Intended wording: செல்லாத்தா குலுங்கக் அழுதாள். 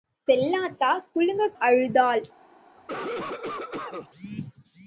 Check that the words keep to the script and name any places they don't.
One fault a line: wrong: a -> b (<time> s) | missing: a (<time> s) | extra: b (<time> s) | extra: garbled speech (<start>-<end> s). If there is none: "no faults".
no faults